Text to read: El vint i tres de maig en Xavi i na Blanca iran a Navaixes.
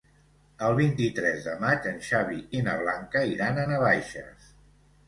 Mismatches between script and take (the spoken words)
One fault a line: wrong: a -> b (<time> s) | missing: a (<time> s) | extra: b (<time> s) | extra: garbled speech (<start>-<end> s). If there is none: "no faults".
no faults